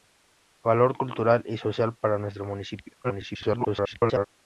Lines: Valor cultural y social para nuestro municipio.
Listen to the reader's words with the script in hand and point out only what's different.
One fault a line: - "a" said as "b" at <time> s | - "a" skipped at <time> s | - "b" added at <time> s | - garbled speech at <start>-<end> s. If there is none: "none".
- garbled speech at 3.0-4.3 s